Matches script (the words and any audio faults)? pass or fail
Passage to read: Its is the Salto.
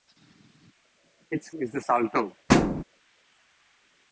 fail